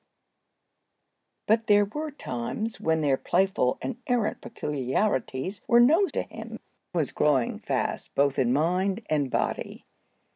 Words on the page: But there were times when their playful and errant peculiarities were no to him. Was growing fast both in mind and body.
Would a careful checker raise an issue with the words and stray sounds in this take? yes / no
no